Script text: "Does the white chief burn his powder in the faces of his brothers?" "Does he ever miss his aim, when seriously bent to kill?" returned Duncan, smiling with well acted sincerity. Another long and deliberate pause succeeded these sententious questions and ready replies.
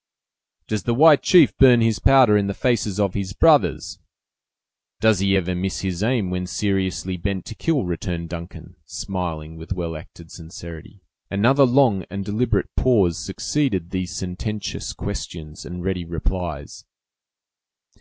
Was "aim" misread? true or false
false